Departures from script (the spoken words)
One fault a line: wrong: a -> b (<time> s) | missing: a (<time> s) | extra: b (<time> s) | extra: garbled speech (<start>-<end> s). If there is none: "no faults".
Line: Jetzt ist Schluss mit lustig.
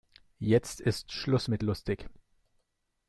no faults